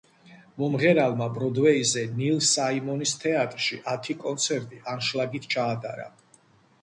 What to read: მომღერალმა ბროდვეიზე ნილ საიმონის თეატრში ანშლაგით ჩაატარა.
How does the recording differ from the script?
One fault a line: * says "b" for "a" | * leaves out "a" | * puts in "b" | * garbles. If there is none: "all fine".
* puts in "ათი კონცერტი"